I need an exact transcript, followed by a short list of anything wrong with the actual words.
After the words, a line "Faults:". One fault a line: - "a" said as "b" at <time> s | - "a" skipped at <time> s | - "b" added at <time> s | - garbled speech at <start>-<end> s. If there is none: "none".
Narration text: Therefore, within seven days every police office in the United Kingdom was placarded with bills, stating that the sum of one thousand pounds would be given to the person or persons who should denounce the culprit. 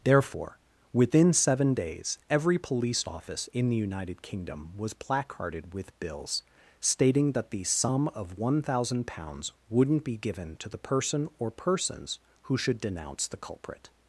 Therefore, within seven days every police office in the United Kingdom was placarded with bills, stating that the sum of one thousand pounds wouldn't be given to the person or persons who should denounce the culprit.
Faults:
- "would" said as "wouldn't" at 9.7 s